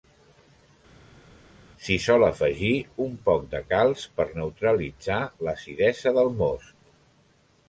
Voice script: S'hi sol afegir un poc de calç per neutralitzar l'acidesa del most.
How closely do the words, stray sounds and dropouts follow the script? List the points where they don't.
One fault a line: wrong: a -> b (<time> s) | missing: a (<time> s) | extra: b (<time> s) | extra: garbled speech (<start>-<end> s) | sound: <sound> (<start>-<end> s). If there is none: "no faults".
no faults